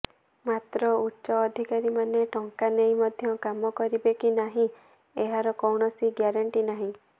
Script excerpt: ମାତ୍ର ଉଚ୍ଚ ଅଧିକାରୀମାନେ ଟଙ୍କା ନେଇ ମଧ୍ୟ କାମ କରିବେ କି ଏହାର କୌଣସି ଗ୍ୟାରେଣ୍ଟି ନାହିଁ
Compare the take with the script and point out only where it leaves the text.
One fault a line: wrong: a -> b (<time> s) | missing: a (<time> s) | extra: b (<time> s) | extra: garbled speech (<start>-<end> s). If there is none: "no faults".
extra: ନାହିଁ (4.4 s)